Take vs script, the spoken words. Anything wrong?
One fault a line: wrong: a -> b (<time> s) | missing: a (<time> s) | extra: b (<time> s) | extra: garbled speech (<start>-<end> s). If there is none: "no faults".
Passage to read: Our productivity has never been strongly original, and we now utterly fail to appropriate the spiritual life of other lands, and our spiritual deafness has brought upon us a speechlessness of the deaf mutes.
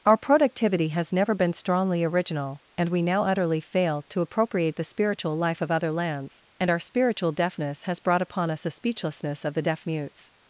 no faults